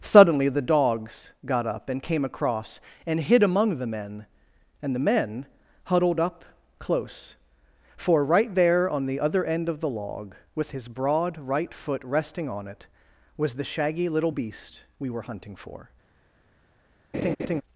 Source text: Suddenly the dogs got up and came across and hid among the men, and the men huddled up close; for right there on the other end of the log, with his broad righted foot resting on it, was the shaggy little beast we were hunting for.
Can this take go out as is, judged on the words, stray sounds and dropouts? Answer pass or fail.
fail